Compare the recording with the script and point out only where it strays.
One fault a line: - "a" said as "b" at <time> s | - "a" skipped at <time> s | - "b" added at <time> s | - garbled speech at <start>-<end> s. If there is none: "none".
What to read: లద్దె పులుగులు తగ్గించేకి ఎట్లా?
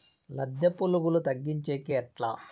none